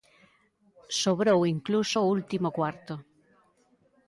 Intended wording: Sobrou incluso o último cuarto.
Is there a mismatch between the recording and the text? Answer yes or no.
no